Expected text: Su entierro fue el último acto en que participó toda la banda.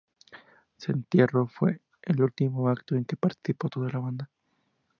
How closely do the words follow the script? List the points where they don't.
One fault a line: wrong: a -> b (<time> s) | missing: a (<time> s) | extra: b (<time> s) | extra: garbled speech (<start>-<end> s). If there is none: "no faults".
no faults